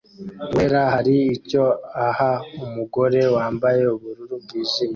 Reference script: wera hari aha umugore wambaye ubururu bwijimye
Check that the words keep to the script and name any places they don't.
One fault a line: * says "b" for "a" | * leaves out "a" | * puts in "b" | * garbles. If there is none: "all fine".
* puts in "icyo"